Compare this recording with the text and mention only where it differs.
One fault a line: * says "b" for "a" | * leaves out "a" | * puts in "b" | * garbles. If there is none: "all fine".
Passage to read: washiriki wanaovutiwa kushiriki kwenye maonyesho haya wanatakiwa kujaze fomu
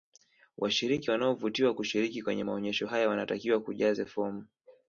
all fine